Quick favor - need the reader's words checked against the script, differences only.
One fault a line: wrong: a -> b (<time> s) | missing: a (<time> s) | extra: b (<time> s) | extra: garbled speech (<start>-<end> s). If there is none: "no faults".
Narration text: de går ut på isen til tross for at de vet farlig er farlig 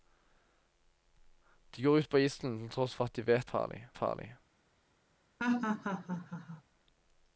no faults